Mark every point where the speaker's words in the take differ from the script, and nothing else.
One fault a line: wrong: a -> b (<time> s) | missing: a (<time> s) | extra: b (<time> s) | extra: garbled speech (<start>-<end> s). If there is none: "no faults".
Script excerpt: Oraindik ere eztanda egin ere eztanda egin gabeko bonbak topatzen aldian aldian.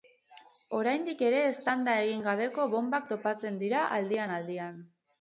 missing: ere eztanda egin (2.2 s)
extra: dira (3.6 s)